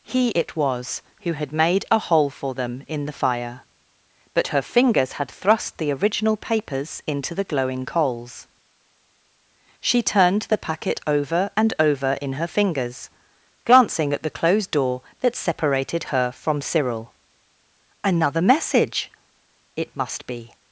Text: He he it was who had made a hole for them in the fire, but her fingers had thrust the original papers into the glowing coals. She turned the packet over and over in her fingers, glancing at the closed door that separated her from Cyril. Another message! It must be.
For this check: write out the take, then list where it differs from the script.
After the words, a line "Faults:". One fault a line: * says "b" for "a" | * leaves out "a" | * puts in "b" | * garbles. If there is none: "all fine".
He it was who had made a hole for them in the fire, but her fingers had thrust the original papers into the glowing coals. She turned the packet over and over in her fingers, glancing at the closed door that separated her from Cyril. Another message! It must be.
Faults:
* leaves out "he"